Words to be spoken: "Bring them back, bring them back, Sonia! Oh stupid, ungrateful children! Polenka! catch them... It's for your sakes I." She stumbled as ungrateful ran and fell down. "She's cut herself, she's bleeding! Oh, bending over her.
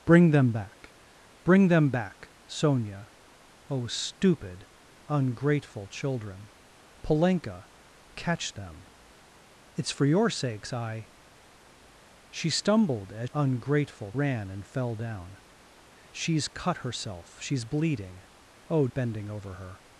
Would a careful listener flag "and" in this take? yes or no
no